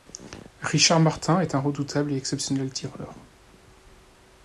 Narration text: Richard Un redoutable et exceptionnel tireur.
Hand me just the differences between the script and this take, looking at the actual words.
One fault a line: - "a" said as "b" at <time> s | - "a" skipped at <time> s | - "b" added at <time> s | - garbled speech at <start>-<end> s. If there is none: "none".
- "Martin est" added at 1.0 s